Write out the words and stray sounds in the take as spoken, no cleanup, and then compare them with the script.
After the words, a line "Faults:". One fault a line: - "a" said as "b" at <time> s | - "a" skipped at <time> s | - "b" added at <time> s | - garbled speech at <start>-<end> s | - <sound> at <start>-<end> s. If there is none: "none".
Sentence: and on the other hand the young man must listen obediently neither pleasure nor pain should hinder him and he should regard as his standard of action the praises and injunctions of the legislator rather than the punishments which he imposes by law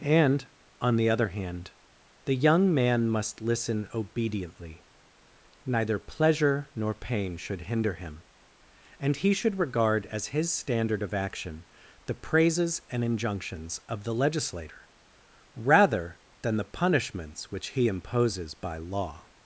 and on the other hand the young man must listen obediently neither pleasure nor pain should hinder him and he should regard as his standard of action the praises and injunctions of the legislator rather than the punishments which he imposes by law
Faults:
none